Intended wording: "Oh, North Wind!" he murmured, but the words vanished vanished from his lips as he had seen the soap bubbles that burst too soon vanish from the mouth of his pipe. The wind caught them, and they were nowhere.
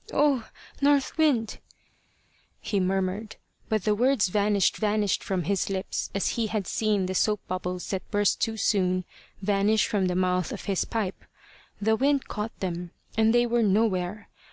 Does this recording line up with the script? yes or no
yes